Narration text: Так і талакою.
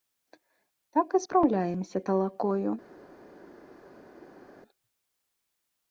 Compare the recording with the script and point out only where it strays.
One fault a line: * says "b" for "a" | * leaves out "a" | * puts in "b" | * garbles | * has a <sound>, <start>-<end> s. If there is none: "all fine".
* puts in "спраўляемся"